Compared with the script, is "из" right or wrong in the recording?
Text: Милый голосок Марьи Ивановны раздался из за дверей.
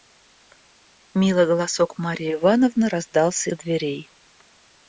wrong